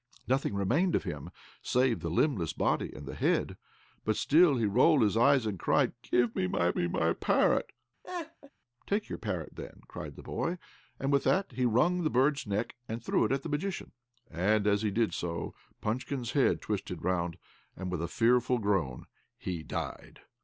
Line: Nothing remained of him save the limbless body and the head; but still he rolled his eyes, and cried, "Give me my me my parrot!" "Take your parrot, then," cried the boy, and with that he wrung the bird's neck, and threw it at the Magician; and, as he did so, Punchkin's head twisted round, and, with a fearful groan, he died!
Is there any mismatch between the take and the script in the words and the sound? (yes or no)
yes